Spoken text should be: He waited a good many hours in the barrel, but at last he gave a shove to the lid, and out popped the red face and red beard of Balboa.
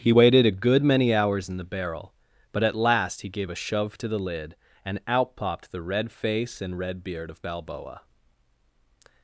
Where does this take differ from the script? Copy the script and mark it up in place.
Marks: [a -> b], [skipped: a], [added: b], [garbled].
He waited a good many hours in the barrel, but at last he gave a shove to the lid, and out popped the red face and red beard of Balboa.